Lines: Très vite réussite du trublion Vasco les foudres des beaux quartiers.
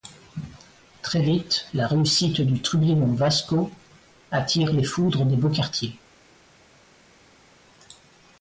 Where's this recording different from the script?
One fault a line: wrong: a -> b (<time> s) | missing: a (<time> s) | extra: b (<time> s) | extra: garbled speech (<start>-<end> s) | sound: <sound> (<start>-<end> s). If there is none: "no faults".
extra: la (1.8 s)
extra: attire (4.3 s)